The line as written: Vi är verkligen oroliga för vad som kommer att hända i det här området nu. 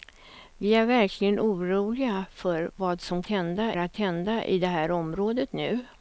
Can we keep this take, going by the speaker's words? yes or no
no